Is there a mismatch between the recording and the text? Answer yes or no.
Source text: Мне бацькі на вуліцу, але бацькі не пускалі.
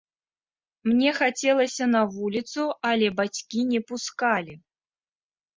yes